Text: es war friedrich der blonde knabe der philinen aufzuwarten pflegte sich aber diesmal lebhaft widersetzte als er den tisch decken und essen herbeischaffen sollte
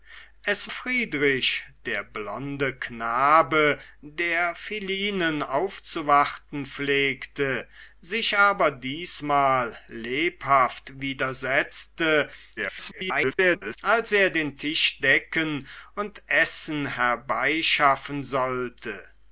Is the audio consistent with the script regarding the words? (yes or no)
no